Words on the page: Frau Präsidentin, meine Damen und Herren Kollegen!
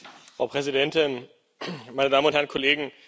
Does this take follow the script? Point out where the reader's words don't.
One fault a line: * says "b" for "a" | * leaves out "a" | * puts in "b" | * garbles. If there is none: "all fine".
all fine